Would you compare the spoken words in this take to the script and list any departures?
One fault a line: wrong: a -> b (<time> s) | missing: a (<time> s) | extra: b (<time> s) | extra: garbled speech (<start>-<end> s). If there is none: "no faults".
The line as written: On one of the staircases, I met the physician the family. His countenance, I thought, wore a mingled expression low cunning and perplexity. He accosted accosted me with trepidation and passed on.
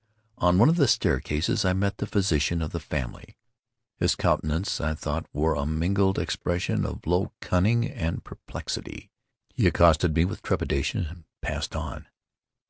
extra: of (2.6 s)
extra: of (6.8 s)
missing: accosted (10.1 s)